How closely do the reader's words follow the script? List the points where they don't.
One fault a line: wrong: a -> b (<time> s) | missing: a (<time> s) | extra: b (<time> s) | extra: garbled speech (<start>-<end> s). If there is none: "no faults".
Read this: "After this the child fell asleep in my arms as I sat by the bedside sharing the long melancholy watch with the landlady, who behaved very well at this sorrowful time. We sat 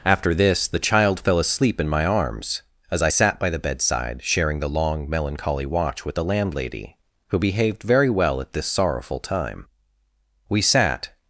no faults